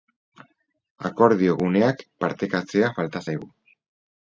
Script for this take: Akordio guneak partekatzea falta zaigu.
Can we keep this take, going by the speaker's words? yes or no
yes